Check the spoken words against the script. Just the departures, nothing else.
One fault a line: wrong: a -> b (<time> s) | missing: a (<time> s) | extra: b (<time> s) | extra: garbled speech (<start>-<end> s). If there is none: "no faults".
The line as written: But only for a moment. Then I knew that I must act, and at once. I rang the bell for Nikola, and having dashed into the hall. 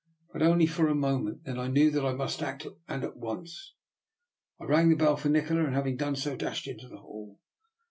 extra: done so (6.0 s)